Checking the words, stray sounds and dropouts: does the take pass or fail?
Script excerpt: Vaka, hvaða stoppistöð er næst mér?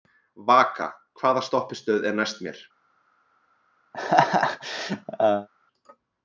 fail